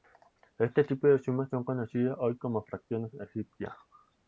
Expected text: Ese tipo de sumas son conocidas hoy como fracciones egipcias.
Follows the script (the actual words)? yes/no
no